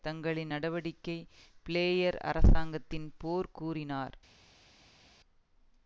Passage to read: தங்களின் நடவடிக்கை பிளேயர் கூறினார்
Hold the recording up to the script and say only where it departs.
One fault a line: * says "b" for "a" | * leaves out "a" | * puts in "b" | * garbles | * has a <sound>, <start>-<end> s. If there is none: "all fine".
* puts in "அரசாங்கத்தின் போர்"